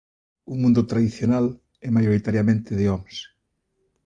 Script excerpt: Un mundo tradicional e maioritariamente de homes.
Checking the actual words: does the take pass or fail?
pass